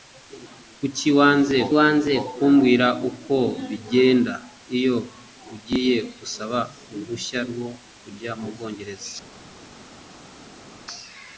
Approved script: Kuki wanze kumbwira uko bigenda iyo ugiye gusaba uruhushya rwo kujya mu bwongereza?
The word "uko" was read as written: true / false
true